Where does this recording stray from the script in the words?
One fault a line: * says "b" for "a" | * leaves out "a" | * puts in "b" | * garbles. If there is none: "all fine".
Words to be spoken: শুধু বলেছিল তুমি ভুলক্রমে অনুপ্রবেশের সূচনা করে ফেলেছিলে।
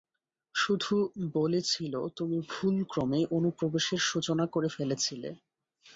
all fine